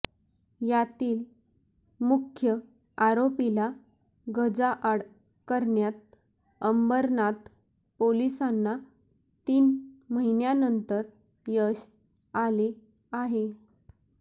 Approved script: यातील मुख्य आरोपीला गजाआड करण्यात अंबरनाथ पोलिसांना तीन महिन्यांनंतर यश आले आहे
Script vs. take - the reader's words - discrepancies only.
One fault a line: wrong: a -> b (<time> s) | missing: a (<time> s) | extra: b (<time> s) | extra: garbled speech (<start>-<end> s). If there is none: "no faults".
no faults